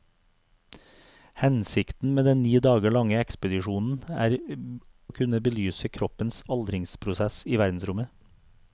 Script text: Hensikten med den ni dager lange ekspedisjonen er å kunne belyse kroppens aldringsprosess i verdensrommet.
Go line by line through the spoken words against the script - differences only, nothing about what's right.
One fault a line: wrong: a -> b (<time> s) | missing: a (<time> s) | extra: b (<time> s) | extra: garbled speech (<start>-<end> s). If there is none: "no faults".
no faults